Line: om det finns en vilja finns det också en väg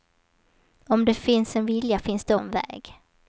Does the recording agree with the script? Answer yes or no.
no